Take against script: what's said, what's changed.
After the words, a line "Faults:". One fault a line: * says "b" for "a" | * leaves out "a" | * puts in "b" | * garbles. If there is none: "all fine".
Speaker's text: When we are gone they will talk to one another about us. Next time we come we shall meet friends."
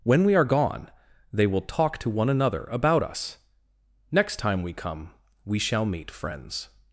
When we are gone they will talk to one another about us. Next time we come we shall meet friends."
Faults:
all fine